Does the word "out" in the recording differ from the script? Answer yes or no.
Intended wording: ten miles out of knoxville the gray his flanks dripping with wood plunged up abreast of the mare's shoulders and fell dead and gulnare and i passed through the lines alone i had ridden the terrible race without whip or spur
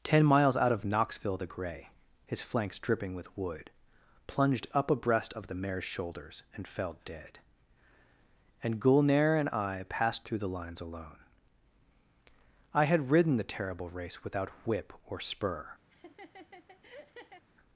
no